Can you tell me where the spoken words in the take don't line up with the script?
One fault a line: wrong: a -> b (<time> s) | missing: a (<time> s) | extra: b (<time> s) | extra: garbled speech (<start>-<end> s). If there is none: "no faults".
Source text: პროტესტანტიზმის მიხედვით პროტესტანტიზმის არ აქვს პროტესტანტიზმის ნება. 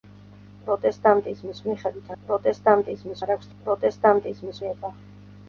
no faults